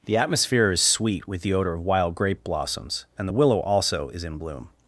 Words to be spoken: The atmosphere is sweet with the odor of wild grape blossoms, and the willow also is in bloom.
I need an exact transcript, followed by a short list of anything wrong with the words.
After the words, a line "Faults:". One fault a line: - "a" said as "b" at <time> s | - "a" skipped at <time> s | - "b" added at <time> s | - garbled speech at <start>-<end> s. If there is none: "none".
The atmosphere is sweet with the odor of wild grape blossoms, and the willow also is in bloom.
Faults:
none